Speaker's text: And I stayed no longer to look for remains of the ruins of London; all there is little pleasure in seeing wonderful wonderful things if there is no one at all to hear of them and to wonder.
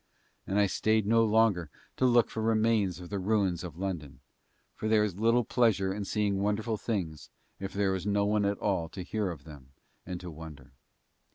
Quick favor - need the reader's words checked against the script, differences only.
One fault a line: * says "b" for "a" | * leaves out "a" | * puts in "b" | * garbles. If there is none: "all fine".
* says "for" for "all"
* leaves out "wonderful"